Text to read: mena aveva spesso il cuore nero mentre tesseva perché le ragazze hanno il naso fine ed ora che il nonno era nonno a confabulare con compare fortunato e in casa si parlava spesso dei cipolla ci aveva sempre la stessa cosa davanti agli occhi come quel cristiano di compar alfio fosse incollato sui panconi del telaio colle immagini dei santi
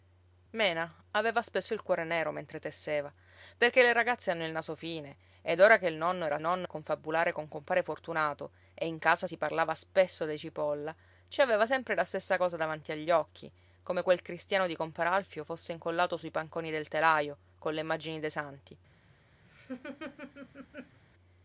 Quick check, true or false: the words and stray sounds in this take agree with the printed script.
false